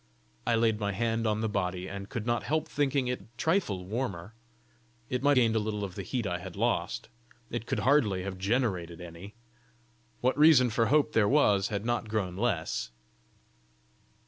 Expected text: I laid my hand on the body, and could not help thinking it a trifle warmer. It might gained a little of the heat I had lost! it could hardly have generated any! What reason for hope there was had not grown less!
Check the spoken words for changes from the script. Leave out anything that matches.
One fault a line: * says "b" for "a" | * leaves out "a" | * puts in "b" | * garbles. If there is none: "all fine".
all fine